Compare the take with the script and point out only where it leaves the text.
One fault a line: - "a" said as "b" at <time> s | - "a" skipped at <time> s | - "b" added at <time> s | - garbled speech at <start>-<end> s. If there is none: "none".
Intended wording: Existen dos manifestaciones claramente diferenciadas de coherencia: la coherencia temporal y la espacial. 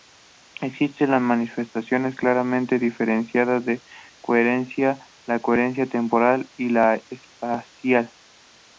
none